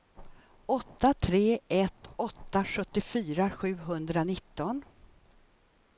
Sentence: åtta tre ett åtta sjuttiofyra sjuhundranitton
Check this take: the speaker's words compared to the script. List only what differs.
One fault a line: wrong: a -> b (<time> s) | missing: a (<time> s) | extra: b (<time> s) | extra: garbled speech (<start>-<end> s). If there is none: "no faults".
no faults